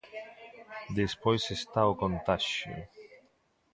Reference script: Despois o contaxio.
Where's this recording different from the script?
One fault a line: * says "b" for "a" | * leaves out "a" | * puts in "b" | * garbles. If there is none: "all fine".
* puts in "está"